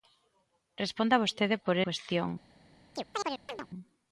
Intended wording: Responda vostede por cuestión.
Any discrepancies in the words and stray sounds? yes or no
yes